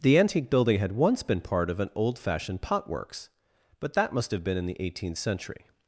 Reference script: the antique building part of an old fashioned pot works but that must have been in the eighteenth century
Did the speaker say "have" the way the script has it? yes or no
yes